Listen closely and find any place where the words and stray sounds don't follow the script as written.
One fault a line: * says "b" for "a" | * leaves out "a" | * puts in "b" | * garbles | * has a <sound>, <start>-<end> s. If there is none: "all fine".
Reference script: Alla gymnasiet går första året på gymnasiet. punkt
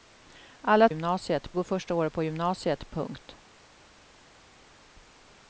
all fine